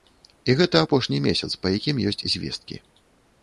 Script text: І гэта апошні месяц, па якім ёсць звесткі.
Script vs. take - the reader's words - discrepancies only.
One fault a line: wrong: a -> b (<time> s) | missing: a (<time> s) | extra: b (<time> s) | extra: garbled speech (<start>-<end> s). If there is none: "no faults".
no faults